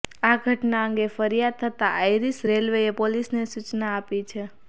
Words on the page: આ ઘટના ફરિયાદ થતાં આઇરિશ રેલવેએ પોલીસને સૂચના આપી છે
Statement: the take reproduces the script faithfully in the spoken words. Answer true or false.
false